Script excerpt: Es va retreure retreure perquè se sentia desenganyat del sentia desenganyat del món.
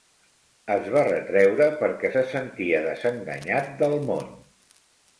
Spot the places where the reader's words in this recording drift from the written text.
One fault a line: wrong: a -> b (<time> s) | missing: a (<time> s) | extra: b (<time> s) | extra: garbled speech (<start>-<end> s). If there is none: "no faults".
missing: retreure (1.7 s)
missing: sentia desenganyat del (4.0 s)